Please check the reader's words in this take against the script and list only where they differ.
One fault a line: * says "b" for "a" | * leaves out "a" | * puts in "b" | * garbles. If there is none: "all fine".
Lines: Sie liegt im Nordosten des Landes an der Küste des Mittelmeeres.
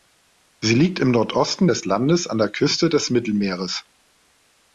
all fine